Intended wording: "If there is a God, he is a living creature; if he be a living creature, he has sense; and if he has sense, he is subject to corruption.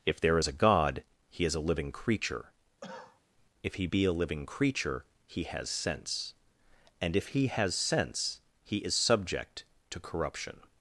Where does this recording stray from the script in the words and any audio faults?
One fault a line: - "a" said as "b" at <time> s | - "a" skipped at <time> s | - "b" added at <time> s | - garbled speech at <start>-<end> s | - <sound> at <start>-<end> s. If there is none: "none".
- cough at 2.8-3.2 s